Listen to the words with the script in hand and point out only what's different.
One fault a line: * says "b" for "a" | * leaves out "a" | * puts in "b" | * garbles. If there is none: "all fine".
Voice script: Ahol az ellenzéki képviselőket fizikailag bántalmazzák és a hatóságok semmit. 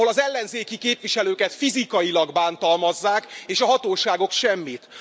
all fine